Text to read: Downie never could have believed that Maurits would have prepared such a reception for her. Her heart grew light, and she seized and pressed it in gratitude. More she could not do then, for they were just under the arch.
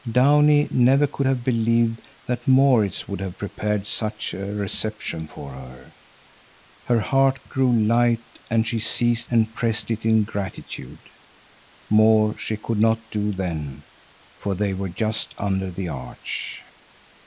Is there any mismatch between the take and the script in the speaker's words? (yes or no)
no